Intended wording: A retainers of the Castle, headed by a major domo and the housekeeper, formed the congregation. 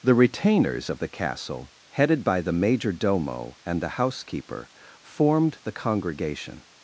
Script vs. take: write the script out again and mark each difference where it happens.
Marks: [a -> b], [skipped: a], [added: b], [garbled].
[A -> The] retainers of the Castle, headed by [a -> the] major domo and the housekeeper, formed the congregation.